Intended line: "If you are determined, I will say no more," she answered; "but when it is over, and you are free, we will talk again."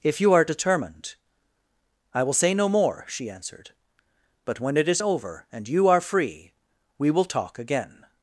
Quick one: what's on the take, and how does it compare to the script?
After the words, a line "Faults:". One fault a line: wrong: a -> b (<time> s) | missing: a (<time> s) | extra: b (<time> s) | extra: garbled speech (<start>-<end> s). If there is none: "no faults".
"If you are determined, I will say no more," she answered; "but when it is over, and you are free, we will talk again."
Faults:
no faults